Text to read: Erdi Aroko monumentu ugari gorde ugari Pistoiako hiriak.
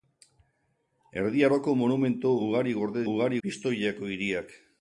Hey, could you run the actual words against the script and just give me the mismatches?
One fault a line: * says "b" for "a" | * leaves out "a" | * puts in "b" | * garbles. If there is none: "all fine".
all fine